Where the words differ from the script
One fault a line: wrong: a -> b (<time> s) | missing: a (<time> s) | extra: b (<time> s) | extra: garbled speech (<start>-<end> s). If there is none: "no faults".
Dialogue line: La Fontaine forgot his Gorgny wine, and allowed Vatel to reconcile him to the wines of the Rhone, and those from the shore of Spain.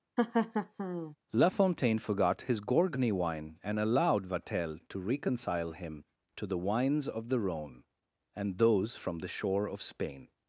no faults